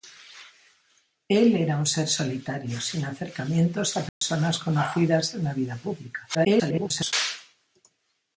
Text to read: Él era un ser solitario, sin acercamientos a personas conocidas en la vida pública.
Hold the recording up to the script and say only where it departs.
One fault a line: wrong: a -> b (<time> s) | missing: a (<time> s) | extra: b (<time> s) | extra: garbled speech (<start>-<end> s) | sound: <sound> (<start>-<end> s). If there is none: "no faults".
sound: dropout (4.1-4.2 s)
extra: garbled speech (6.3-7.1 s)